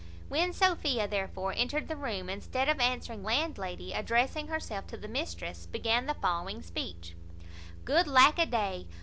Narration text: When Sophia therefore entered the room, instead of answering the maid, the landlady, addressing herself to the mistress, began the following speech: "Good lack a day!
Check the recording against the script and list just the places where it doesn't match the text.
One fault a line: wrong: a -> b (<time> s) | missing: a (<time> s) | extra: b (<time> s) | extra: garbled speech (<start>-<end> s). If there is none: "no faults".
missing: the maid the (3.2 s)